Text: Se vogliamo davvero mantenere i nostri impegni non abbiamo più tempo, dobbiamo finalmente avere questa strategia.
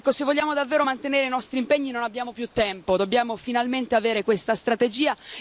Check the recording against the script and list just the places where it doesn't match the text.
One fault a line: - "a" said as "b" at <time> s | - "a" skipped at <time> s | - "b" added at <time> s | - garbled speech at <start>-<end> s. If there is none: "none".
none